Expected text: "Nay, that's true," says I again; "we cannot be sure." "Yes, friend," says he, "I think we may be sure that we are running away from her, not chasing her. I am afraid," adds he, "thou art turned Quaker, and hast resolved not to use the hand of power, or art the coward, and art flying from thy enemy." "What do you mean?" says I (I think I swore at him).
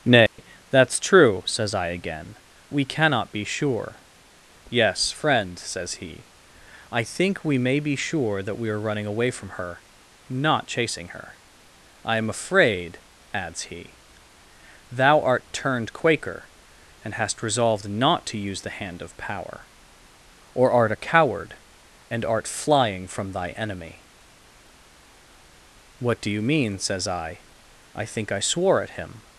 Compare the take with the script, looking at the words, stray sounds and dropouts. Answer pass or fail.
fail